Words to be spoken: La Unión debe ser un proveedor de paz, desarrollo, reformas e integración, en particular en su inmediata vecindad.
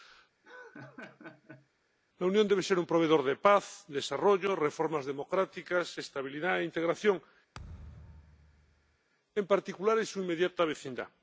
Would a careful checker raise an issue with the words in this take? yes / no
yes